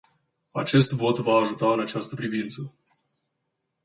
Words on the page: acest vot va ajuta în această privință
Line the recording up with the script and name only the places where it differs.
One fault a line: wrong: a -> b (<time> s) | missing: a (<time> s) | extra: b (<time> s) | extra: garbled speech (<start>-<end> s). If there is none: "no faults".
no faults